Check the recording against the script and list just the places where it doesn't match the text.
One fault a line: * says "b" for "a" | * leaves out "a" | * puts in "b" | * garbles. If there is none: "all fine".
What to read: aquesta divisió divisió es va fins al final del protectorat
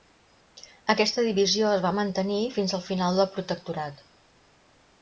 * leaves out "divisió"
* puts in "mantenir"